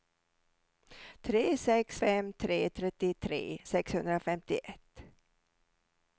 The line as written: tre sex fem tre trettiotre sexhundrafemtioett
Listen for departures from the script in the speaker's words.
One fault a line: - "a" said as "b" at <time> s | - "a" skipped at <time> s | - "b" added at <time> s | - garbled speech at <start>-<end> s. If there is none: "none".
none